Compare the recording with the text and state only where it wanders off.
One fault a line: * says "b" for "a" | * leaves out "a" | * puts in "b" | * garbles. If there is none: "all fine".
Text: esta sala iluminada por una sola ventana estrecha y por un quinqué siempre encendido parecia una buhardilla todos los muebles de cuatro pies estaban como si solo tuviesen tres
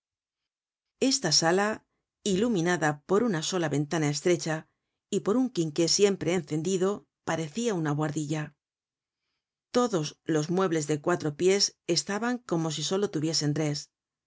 all fine